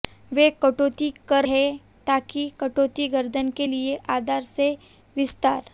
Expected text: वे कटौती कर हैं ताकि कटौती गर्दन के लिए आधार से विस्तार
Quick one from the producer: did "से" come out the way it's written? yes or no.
yes